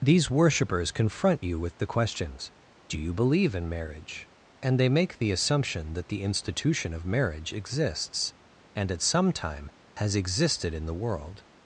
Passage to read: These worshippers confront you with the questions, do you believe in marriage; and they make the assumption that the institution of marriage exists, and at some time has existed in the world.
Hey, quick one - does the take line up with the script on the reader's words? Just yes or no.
yes